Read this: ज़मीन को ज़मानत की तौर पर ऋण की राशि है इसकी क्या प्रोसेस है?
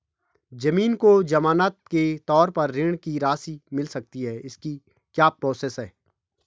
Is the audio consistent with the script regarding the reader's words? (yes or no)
no